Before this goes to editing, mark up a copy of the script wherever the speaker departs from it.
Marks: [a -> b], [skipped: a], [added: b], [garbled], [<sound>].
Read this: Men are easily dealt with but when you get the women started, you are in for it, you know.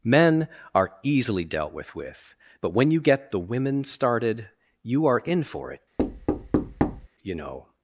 Men are easily dealt with [added: with] but when you get the women started, you are in for it, [thud] you know.